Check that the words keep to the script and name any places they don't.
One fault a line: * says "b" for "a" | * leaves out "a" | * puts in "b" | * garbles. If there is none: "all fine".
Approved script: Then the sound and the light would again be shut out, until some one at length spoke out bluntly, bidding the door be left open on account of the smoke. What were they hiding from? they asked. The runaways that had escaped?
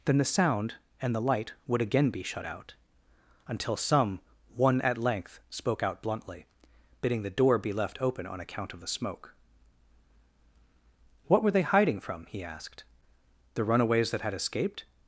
* says "he" for "they"